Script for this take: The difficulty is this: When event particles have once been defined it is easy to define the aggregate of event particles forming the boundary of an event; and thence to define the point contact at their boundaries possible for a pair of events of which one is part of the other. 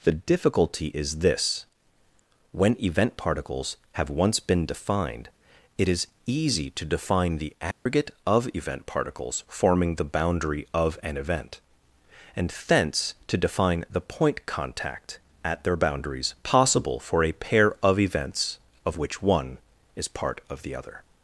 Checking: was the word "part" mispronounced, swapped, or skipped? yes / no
no